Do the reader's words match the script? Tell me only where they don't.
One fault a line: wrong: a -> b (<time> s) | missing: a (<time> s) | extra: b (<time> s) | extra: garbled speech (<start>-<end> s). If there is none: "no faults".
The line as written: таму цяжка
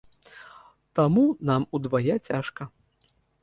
extra: нам удвая (1.5 s)